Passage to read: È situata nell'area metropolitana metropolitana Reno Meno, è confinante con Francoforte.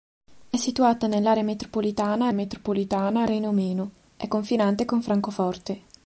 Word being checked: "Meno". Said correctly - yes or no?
yes